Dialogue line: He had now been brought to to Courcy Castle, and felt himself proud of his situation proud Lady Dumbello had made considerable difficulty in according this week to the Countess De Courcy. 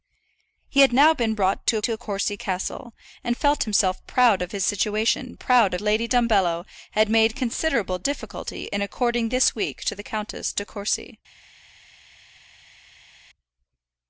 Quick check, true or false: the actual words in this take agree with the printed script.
true